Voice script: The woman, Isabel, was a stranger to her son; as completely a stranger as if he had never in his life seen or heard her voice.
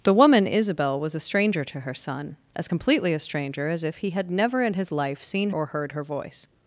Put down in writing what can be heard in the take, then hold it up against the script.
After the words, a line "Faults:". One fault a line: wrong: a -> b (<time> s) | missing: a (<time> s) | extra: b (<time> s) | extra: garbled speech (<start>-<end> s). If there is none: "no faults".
The woman, Isabel, was a stranger to her son; as completely a stranger as if he had never in his life seen or heard her voice.
Faults:
no faults